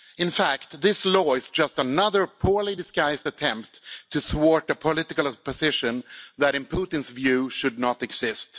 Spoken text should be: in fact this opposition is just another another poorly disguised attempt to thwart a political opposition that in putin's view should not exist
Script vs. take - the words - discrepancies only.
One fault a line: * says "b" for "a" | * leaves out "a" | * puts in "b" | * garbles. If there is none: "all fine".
* says "law" for "opposition"
* leaves out "another"